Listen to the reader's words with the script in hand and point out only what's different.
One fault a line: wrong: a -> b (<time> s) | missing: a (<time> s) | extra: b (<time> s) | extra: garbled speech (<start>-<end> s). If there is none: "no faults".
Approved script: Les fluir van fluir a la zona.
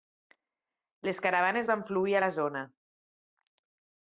wrong: fluir -> caravanes (1.2 s)